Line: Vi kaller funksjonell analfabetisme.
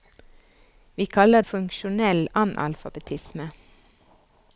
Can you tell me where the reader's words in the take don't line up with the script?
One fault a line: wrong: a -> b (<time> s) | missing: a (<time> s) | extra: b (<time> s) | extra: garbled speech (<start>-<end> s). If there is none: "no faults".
no faults